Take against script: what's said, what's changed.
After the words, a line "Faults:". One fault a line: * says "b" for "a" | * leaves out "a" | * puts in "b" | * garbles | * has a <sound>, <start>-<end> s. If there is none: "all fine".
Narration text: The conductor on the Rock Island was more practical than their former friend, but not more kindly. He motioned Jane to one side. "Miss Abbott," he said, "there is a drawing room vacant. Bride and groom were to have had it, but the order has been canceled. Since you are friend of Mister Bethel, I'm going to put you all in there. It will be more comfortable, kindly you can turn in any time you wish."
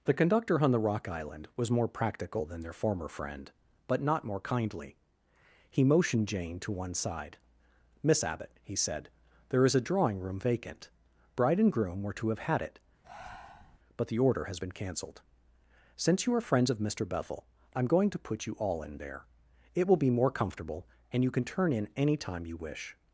The conductor on the Rock Island was more practical than their former friend, but not more kindly. He motioned Jane to one side. "Miss Abbott," he said, "there is a drawing room vacant. Bride and groom were to have had it, but the order has been canceled. Since you are friends of Mister Bethel, I'm going to put you all in there. It will be more comfortable, and you can turn in any time you wish."
Faults:
* has a breath, 13.0-13.8 s
* says "friends" for "friend"
* says "and" for "kindly"